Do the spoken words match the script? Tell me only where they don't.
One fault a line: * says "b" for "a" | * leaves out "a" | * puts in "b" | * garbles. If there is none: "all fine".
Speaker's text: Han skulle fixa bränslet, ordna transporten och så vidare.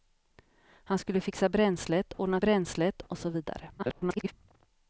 * says "bränslet" for "transporten"
* garbles